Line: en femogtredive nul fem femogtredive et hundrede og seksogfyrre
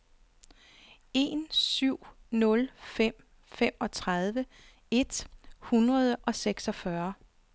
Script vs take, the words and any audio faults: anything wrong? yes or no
yes